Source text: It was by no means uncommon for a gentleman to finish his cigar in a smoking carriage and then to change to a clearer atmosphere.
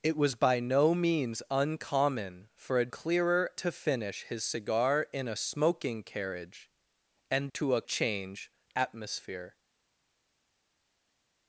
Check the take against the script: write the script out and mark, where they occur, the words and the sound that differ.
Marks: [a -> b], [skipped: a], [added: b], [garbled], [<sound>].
It was by no means uncommon for a [gentleman -> clearer] to finish his cigar in a smoking carriage and [skipped: then] to [skipped: change to] a [clearer -> change] atmosphere.